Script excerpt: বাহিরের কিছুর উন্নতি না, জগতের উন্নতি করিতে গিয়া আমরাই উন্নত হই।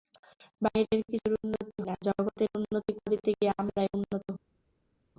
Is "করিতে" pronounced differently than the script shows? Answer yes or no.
no